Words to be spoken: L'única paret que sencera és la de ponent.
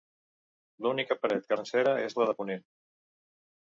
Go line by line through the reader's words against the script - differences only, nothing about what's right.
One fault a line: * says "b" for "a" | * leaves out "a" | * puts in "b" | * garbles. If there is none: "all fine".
all fine